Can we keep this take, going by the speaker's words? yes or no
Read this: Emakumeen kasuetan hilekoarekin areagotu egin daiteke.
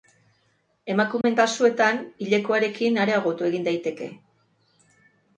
yes